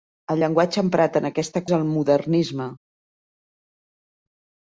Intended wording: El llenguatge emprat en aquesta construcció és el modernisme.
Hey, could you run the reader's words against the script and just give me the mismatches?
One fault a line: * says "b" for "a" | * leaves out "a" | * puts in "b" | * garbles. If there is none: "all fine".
* leaves out "construcció"